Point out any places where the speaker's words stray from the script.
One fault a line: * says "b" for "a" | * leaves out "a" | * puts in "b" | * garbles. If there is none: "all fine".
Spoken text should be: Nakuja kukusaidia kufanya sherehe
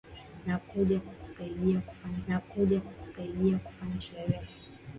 * puts in "nakuja kukusaidia kufanya"